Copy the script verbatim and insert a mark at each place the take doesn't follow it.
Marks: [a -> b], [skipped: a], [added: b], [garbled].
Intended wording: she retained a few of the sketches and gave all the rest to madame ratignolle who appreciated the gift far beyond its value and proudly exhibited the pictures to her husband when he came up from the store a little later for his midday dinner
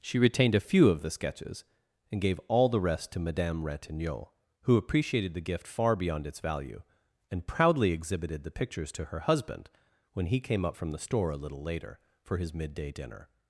she retained a few of the sketches and gave all the rest to madame ratignolle who appreciated the gift far beyond its value and proudly exhibited the pictures to her husband when he came up from the store a little later for his midday dinner